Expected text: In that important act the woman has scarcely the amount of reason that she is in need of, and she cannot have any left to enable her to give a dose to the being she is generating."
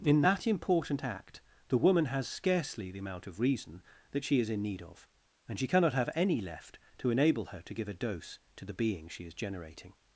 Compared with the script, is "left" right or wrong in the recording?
right